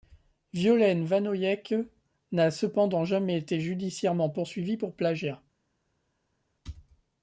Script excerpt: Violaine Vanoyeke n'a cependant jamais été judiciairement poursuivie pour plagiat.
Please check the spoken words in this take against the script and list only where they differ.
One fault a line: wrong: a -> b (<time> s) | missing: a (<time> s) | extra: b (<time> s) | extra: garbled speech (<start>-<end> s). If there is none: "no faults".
no faults